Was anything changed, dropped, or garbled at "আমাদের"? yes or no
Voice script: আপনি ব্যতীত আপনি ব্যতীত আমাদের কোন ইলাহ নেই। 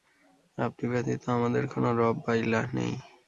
yes